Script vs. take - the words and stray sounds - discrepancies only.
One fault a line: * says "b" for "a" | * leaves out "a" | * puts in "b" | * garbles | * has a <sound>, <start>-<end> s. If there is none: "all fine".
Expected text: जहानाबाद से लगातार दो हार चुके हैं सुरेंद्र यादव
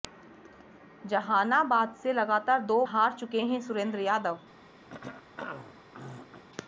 * has a throat clearing, 4.9-6.4 s